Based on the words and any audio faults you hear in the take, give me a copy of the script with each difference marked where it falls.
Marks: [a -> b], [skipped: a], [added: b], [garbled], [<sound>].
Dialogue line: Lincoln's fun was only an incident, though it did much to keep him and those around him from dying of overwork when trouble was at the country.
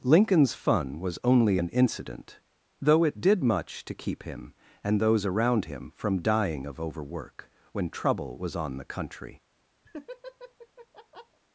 Lincoln's fun was only an incident, though it did much to keep him and those around him from dying of overwork when trouble was [at -> on] the country. [laugh]